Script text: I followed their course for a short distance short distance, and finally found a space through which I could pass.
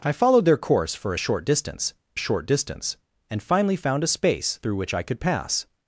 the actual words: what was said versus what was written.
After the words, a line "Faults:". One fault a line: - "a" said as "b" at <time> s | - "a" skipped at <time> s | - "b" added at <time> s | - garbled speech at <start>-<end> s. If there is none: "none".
I followed their course for a short distance short distance, and finally found a space through which I could pass.
Faults:
none